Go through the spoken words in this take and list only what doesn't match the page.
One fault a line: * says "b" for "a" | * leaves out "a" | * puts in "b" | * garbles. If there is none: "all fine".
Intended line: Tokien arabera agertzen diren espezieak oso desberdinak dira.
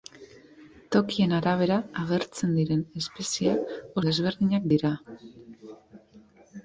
* leaves out "oso"